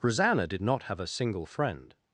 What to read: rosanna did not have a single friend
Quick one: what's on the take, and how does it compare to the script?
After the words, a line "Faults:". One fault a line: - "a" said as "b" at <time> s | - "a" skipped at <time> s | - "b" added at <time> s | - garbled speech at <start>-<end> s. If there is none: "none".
rosanna did not have a single friend
Faults:
none